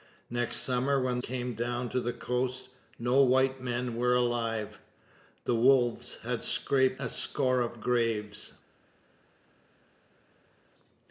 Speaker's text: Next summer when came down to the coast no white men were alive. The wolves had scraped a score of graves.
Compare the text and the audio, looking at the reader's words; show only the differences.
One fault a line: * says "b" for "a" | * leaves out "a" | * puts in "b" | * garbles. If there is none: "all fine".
all fine